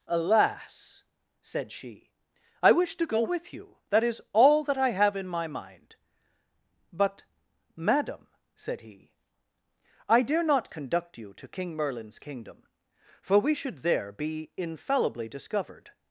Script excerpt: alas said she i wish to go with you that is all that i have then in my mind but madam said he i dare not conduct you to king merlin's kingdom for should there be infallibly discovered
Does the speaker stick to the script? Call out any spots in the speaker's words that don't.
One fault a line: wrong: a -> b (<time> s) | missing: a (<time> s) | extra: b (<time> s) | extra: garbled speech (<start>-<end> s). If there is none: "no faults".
missing: then (5.2 s)
extra: we (13.4 s)